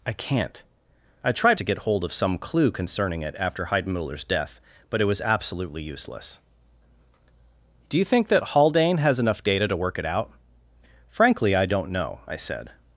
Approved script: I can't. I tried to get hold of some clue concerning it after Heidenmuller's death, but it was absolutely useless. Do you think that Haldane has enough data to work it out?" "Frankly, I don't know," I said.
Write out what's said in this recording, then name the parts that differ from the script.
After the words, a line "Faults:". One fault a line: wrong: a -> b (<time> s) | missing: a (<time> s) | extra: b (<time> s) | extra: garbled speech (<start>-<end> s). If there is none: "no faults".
I can't. I tried to get hold of some clue concerning it after Heidenmuller's death, but it was absolutely useless. Do you think that Haldane has enough data to work it out?" "Frankly, I don't know," I said.
Faults:
no faults